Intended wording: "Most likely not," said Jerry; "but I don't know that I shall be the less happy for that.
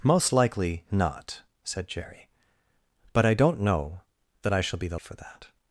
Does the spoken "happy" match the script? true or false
false